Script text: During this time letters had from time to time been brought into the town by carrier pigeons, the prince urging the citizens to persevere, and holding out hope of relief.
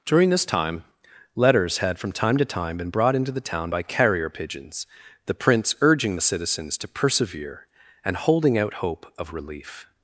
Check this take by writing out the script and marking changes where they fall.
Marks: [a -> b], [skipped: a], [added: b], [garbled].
During this time letters had from time to time been brought into the town by carrier pigeons, the prince urging the citizens to persevere, and holding out hope of relief.